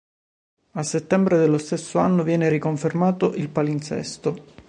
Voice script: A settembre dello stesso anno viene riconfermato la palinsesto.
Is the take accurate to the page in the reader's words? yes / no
no